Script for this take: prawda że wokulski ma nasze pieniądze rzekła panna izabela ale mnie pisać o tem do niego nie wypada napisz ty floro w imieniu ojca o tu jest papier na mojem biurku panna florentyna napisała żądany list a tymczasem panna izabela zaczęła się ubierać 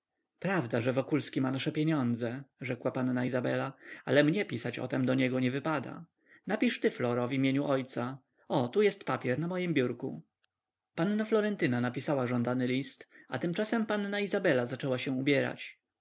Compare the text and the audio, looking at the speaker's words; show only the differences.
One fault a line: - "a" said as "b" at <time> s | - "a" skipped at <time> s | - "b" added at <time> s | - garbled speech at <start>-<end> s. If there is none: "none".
none